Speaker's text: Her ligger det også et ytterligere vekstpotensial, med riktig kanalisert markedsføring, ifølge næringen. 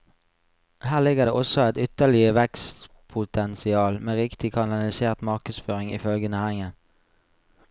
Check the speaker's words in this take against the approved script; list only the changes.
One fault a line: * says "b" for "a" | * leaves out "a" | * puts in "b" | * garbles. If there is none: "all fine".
all fine